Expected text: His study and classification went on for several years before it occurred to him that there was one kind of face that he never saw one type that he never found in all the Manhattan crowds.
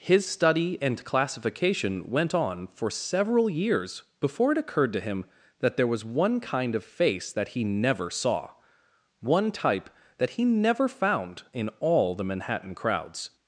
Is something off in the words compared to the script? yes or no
no